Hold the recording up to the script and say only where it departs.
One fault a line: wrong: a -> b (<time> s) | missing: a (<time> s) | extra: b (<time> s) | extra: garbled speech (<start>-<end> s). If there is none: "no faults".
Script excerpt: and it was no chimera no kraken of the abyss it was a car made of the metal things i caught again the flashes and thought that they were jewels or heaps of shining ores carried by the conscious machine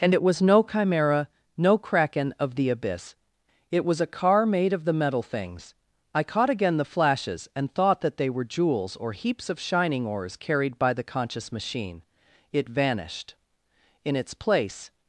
extra: it vanished in its place (12.5 s)